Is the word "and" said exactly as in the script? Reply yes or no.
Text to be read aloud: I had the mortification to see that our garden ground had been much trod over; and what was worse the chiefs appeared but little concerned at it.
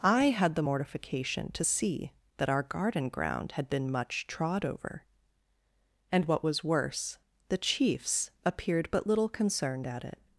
yes